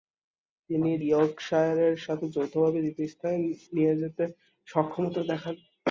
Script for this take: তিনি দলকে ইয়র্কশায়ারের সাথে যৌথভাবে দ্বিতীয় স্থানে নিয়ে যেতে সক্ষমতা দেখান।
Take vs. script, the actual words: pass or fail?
fail